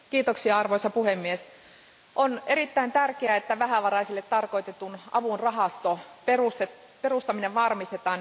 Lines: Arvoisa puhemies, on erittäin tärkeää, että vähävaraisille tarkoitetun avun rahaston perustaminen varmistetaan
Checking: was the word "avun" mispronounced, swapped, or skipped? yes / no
no